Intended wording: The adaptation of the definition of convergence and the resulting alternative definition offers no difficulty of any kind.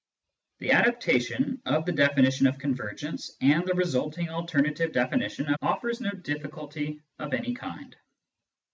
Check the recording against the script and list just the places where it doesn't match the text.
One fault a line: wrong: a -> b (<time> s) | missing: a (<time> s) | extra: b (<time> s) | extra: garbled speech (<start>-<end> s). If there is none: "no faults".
no faults